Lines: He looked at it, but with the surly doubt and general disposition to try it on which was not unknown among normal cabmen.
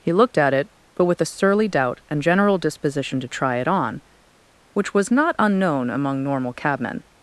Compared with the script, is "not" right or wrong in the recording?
right